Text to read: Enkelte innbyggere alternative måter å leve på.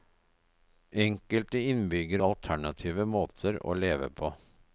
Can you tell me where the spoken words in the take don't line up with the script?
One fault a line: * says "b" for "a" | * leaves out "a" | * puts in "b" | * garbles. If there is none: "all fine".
all fine